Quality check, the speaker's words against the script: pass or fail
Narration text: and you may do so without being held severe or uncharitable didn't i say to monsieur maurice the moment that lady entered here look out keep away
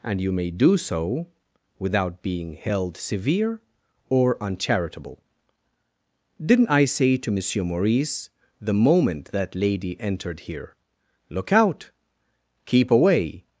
pass